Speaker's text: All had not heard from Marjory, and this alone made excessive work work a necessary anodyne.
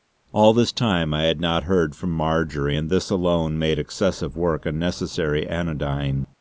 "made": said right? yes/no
yes